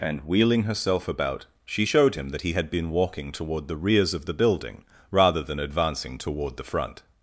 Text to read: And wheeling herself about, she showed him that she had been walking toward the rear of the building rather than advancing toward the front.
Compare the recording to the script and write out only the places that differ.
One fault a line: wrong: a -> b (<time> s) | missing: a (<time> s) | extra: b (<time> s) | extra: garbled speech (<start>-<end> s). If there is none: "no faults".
wrong: she -> he (2.4 s)
wrong: rear -> rears (3.8 s)